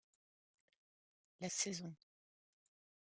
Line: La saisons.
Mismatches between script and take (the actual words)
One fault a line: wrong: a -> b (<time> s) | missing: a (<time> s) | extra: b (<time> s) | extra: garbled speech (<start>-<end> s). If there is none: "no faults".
no faults